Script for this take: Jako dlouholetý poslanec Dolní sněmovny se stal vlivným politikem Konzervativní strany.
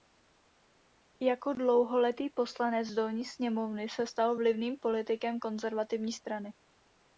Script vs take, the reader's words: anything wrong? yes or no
no